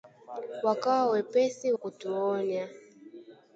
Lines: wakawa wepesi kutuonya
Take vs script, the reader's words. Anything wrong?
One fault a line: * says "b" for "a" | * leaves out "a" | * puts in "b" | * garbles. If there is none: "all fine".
all fine